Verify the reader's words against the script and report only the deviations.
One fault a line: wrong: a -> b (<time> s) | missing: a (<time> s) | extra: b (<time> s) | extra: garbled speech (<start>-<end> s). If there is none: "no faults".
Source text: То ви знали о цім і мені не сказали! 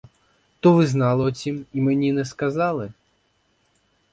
no faults